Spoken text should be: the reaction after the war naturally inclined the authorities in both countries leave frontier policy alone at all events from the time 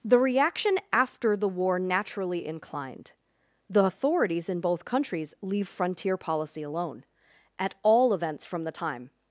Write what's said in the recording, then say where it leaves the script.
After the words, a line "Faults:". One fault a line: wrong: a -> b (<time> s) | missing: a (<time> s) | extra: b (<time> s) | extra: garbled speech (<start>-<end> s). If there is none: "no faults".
the reaction after the war naturally inclined the authorities in both countries leave frontier policy alone at all events from the time
Faults:
no faults